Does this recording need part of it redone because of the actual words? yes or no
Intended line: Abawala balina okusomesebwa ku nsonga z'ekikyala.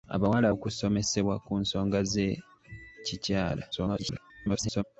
yes